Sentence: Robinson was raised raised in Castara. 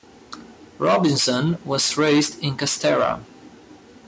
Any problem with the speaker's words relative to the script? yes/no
yes